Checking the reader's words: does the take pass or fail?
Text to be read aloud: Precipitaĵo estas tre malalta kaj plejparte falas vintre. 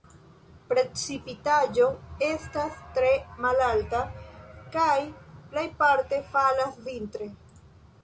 pass